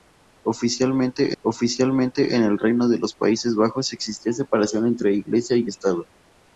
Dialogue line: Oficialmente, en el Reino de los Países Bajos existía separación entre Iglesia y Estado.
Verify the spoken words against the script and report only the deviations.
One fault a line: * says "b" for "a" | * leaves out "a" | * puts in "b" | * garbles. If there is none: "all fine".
* puts in "oficialmente"